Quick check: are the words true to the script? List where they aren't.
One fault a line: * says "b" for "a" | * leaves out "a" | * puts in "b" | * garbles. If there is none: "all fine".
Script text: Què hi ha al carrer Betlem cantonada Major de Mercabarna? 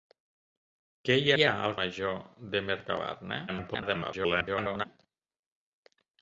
* puts in "hi"
* leaves out "carrer Betlem cantonada"
* garbles